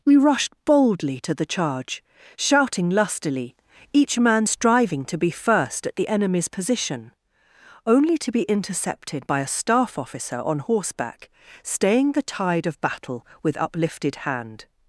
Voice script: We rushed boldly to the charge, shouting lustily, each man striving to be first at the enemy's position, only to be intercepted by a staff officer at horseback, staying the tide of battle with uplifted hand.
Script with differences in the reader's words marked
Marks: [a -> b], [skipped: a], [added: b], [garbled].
We rushed boldly to the charge, shouting lustily, each man striving to be first at the enemy's position, only to be intercepted by a staff officer [at -> on] horseback, staying the tide of battle with uplifted hand.